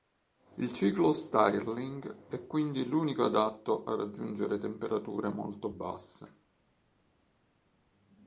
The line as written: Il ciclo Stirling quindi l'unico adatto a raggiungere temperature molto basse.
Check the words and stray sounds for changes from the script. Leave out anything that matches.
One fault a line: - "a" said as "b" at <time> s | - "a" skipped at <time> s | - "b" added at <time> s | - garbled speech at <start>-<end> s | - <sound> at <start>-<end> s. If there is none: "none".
- "è" added at 2.3 s